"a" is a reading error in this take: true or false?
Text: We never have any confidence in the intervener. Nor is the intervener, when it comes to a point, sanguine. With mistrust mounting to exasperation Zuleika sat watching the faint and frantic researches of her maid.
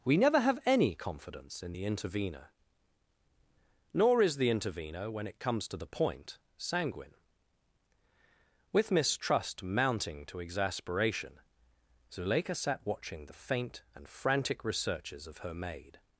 true